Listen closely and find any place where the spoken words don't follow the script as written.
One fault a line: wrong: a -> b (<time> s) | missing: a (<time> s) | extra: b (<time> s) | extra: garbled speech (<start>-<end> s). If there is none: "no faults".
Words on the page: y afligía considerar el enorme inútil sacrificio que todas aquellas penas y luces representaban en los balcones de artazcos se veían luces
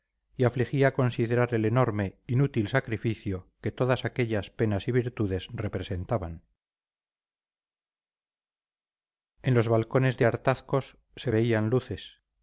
wrong: luces -> virtudes (4.9 s)